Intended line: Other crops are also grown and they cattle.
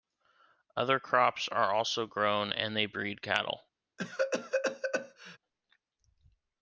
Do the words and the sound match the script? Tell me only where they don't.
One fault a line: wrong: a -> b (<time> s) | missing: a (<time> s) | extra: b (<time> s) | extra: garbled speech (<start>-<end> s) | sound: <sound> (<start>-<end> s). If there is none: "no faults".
extra: breed (2.9 s)
sound: cough (4.0-5.4 s)